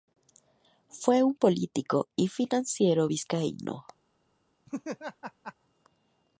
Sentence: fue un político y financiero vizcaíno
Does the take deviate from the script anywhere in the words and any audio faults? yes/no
yes